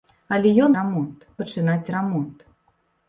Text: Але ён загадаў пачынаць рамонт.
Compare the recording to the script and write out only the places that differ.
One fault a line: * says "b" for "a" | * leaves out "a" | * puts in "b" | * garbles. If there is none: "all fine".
* says "рамонт" for "загадаў"